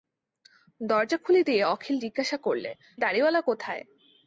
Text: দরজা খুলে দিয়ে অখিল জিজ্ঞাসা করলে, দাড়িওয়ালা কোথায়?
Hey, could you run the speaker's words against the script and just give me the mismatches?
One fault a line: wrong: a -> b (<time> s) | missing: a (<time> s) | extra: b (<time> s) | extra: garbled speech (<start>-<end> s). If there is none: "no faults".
no faults